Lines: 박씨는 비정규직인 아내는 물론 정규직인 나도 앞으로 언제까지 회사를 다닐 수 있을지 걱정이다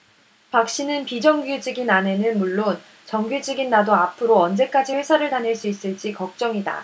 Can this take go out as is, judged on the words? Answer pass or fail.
pass